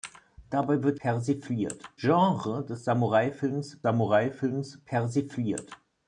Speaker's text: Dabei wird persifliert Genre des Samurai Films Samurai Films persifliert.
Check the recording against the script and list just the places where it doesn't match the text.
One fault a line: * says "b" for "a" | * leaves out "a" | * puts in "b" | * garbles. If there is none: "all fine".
all fine